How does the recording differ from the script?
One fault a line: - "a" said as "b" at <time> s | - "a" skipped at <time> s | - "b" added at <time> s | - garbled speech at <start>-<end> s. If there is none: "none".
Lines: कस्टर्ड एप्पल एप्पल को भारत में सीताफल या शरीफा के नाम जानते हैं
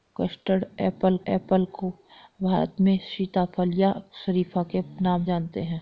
none